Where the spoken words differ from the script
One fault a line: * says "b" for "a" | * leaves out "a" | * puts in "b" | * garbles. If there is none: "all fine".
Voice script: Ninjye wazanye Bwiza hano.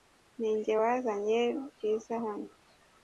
all fine